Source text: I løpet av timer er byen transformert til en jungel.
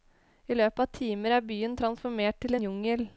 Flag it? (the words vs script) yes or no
yes